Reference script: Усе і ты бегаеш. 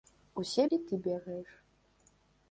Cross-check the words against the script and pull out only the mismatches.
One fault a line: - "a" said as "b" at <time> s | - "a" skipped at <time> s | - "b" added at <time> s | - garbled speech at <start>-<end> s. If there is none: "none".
none